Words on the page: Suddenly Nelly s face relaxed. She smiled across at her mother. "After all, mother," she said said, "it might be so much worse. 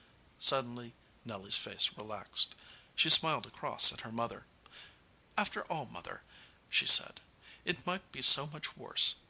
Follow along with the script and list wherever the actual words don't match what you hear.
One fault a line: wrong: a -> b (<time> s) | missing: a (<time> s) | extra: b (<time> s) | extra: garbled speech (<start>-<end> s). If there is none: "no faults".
missing: said (7.2 s)